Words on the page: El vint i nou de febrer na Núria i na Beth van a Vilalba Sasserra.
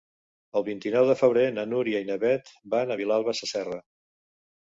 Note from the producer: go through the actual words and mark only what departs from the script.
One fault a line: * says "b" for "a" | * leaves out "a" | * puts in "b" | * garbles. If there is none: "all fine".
all fine